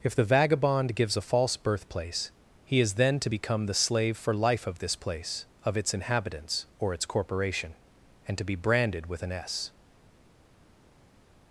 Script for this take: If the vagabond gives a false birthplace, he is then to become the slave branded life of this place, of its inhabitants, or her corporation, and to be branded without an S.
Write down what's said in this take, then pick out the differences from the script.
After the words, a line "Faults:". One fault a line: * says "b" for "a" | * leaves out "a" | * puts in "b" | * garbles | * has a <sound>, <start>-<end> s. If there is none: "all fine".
If the vagabond gives a false birthplace, he is then to become the slave for life of this place, of its inhabitants, or its corporation, and to be branded with an S.
Faults:
* says "for" for "branded"
* says "its" for "her"
* says "with" for "without"